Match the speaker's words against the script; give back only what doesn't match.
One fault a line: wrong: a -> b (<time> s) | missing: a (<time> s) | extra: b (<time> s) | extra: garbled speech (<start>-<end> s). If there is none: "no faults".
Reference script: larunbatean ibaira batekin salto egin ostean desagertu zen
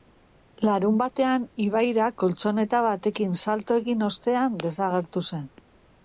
extra: koltxoneta (2.2 s)